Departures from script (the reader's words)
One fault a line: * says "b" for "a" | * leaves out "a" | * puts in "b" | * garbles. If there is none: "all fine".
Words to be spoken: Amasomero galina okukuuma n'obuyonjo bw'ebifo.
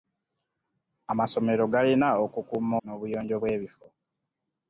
all fine